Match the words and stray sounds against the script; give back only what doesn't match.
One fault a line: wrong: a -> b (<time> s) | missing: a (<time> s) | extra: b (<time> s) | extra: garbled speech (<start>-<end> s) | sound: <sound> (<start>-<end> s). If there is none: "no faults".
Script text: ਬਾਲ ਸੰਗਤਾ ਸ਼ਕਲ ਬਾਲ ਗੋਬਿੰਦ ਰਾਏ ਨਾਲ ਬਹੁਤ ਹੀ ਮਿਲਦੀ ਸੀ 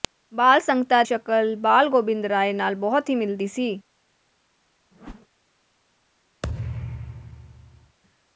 sound: whoosh (4.9-5.3 s)
sound: thud (6.4-8.0 s)